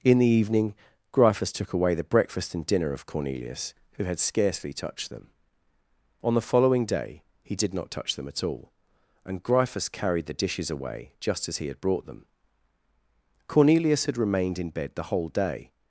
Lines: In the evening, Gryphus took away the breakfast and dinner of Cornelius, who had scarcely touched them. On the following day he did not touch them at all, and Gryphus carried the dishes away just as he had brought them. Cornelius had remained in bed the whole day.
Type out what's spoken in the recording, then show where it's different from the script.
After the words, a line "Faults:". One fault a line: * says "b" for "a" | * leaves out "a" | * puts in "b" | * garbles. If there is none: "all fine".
In the evening, Gryphus took away the breakfast and dinner of Cornelius, who had scarcely touched them. On the following day he did not touch them at all, and Gryphus carried the dishes away just as he had brought them. Cornelius had remained in bed the whole day.
Faults:
all fine